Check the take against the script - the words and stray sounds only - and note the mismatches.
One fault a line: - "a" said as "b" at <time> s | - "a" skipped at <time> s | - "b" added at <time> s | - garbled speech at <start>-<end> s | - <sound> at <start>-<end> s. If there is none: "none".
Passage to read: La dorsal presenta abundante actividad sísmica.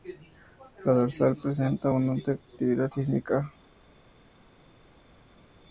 none